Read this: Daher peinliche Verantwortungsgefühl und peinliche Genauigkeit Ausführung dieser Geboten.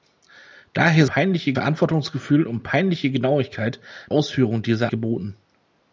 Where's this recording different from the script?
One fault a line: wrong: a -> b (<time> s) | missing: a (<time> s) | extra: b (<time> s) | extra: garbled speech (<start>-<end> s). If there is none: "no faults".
no faults